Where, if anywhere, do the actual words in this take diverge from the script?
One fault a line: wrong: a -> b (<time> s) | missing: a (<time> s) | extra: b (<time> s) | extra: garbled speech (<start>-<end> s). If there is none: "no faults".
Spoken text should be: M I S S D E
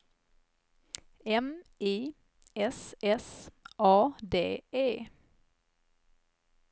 extra: A (3.8 s)